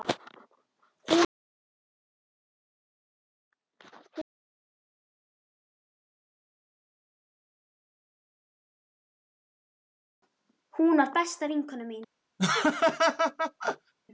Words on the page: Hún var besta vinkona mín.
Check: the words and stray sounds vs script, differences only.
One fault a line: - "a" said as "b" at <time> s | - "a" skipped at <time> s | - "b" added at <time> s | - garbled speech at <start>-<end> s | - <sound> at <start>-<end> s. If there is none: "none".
- laugh at 12.4-13.9 s